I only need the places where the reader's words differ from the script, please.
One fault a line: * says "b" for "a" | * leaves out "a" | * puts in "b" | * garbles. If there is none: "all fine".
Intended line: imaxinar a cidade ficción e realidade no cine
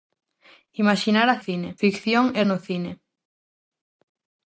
* says "cine" for "cidade"
* leaves out "realidade"